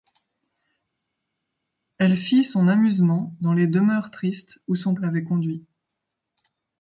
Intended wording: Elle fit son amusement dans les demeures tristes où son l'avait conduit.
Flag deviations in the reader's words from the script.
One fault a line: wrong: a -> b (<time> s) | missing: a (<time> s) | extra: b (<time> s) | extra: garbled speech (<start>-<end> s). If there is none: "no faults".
no faults